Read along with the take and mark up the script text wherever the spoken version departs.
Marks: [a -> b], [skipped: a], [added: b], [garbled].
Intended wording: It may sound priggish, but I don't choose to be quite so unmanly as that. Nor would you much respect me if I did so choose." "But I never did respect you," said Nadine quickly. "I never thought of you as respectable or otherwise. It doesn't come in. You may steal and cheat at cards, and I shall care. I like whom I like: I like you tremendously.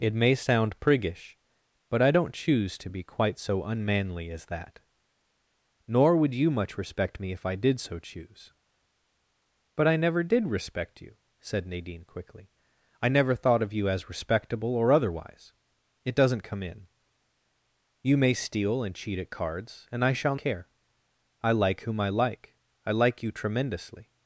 It may sound priggish, but I don't choose to be quite so unmanly as that. Nor would you much respect me if I did so choose." "But I never did respect you," said Nadine quickly. "I never thought of you as respectable or otherwise. It doesn't come in. You may steal and cheat at cards, and I shall care. I like whom I like: I like you tremendously.